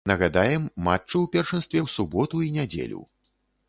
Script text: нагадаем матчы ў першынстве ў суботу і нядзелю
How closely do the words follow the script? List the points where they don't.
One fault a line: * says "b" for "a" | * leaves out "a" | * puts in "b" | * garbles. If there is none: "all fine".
all fine